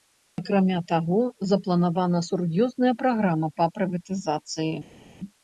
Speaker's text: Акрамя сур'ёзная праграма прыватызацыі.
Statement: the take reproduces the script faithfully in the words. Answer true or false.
false